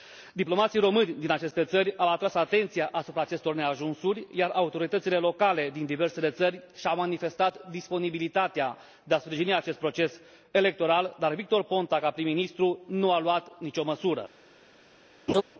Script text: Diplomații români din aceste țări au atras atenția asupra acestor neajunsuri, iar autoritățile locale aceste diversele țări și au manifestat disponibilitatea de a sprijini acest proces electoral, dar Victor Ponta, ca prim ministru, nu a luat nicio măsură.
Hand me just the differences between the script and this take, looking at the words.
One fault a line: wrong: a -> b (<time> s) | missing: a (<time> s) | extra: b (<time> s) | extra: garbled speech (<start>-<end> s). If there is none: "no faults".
wrong: aceste -> din (5.7 s)